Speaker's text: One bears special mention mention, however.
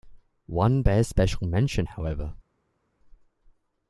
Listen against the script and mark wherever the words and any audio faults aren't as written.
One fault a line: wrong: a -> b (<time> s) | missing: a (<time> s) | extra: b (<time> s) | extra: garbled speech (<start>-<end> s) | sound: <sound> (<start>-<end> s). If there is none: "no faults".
missing: mention (1.8 s)